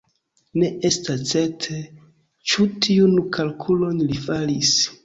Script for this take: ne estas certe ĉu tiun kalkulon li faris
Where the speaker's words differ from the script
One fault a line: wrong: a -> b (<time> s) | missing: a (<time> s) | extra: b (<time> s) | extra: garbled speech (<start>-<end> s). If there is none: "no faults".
no faults